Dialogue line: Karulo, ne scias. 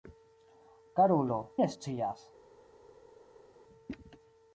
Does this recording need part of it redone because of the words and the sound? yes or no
no